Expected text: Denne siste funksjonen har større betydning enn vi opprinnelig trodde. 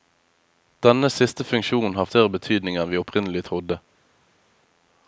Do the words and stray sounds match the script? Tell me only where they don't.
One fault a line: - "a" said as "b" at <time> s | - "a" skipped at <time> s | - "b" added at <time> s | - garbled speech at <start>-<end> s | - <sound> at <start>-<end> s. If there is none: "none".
none